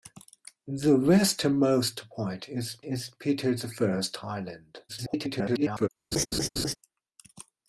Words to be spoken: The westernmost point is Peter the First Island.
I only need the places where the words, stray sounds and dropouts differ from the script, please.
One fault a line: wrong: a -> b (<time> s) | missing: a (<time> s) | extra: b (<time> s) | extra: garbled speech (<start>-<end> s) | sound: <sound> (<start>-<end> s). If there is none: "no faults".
extra: is (2.8 s)
extra: garbled speech (4.9-5.9 s)
sound: laugh (6.1-6.8 s)